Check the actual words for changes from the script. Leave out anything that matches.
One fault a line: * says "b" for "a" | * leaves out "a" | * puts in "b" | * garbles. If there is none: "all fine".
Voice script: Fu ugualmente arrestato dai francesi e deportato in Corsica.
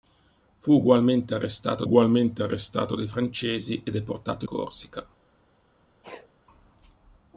* puts in "ugualmente arrestato"
* leaves out "in"